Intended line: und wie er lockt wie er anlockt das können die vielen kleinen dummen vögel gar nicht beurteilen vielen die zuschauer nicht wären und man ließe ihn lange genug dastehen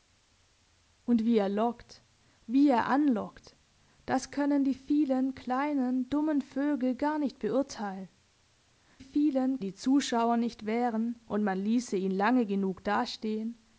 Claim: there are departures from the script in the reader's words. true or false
false